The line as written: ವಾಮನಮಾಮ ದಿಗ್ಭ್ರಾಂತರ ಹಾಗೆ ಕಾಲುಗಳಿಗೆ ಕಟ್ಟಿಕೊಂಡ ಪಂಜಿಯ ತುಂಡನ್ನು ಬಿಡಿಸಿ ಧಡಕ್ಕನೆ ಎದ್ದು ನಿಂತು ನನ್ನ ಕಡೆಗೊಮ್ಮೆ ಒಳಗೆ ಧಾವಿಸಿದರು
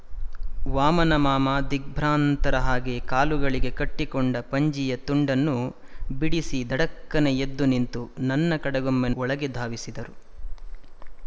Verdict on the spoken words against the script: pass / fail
pass